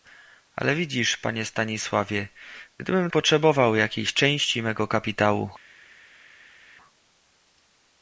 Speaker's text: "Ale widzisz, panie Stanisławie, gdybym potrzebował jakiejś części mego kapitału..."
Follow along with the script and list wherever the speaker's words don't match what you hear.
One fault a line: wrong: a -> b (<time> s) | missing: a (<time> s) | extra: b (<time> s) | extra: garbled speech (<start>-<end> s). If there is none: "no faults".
no faults